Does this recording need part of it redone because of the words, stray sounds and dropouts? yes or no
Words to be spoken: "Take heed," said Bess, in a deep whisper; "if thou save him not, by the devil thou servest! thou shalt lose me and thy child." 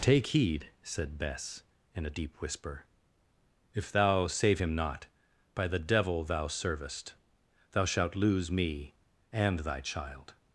no